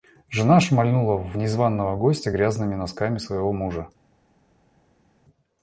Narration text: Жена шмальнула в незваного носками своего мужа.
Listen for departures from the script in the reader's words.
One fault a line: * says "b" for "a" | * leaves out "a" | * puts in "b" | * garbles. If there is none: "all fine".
* puts in "гостя грязными"